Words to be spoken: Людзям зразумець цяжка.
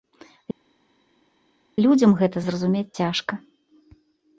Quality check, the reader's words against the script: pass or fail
fail